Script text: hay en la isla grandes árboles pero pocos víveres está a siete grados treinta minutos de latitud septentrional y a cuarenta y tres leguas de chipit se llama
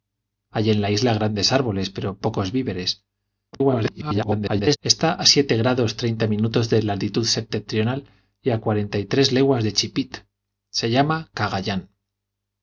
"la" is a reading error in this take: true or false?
false